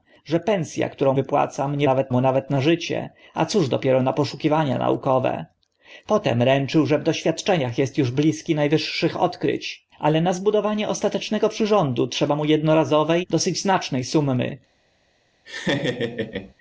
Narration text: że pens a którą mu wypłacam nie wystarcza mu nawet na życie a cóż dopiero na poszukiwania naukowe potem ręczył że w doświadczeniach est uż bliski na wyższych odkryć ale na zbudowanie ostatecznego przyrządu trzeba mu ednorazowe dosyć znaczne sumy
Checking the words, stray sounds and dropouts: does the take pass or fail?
fail